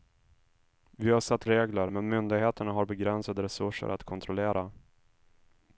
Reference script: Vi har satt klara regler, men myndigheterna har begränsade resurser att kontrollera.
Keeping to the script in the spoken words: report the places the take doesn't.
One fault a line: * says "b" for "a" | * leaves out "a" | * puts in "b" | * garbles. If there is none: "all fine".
* leaves out "klara"